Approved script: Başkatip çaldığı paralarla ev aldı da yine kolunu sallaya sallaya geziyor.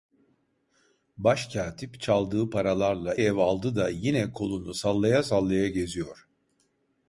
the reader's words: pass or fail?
pass